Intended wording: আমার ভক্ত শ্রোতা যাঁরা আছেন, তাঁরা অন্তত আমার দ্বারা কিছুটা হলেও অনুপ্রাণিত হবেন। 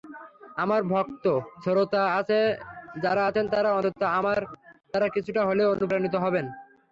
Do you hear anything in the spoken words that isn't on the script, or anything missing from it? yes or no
no